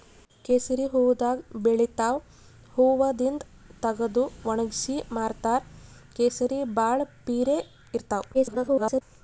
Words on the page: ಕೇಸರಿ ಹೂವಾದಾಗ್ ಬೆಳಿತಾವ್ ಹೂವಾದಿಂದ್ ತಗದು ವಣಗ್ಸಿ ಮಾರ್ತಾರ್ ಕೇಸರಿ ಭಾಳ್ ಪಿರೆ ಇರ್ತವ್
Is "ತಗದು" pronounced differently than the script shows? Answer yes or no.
no